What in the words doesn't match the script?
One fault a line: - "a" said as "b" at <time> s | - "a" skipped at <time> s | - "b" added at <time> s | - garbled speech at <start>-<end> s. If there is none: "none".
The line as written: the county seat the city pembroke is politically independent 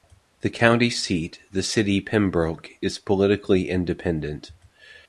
none